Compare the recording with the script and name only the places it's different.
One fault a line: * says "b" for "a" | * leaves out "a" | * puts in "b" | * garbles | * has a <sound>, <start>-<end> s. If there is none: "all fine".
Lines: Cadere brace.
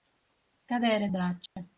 * has a dropout, 1.5-1.6 s